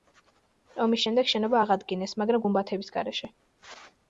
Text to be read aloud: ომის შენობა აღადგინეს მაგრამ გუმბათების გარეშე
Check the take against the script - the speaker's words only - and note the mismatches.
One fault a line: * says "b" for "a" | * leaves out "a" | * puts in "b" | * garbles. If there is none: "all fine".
* puts in "შემდეგ"